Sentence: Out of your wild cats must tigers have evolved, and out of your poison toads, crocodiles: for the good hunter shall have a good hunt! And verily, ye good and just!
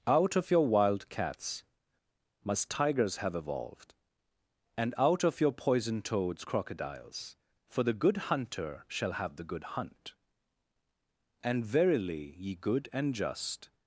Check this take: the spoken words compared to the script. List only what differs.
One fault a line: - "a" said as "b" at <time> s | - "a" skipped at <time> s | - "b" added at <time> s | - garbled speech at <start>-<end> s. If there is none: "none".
- "a" said as "the" at 9.4 s